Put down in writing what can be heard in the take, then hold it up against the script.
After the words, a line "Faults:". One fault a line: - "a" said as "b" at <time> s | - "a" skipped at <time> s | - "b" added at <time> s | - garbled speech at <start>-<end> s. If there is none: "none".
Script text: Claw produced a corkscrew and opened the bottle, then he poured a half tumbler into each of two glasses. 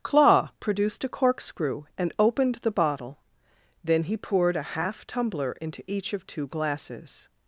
Claw produced a corkscrew and opened the bottle, then he poured a half tumbler into each of two glasses.
Faults:
none